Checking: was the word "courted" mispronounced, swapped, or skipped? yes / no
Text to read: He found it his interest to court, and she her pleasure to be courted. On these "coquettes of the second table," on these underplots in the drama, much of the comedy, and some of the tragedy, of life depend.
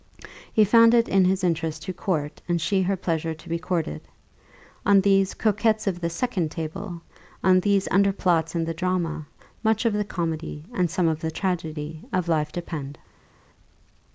no